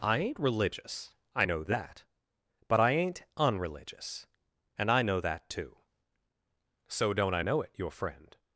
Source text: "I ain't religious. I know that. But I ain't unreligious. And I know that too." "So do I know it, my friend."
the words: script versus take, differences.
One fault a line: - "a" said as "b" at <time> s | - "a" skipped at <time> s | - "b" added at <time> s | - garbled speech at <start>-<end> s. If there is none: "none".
- "do" said as "don't" at 7.1 s
- "my" said as "your" at 7.7 s